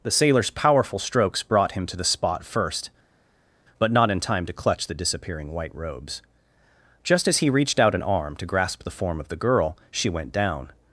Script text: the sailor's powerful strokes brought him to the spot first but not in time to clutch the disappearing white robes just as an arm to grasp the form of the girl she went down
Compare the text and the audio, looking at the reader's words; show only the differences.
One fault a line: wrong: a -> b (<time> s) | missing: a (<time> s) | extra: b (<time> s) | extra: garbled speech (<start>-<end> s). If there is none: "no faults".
extra: he reached out (7.4 s)